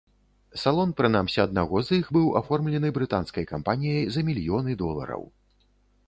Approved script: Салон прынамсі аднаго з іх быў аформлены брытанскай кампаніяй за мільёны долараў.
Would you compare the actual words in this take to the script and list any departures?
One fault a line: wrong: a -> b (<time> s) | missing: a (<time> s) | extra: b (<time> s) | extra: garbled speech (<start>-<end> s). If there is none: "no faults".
no faults